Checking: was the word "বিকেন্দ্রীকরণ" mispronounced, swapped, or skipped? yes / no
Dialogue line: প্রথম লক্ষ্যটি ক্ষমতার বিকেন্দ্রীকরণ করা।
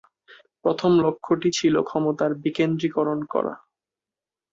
no